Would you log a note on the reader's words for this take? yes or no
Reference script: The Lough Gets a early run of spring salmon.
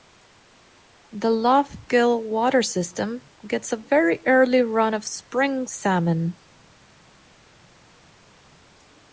yes